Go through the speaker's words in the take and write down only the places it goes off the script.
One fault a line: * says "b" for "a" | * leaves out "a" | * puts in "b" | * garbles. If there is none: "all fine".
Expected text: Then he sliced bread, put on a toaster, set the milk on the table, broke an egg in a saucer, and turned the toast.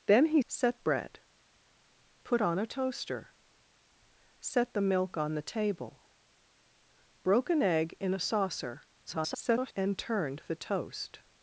* says "set" for "sliced"
* garbles